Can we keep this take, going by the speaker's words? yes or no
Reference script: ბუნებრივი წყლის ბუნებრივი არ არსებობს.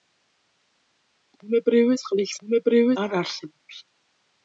yes